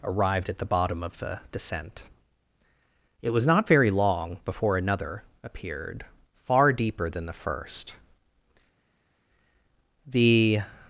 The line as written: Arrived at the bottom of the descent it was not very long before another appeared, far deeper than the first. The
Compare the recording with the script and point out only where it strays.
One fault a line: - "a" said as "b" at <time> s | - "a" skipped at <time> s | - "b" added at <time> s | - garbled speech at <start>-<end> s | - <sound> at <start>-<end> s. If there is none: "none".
none